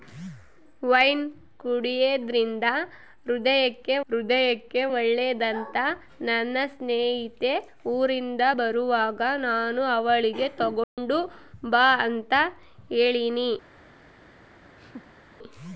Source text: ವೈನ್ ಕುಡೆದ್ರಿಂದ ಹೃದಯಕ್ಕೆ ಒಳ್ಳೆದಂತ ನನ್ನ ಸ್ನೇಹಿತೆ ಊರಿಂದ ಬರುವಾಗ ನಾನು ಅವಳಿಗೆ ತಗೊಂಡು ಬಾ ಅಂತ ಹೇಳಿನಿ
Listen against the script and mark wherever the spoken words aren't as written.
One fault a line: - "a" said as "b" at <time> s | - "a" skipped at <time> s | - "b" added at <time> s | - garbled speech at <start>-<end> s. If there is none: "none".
- "ಹೃದಯಕ್ಕೆ" added at 4.1 s